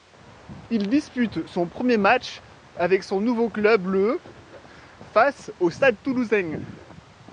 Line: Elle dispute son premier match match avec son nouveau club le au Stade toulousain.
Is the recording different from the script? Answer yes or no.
yes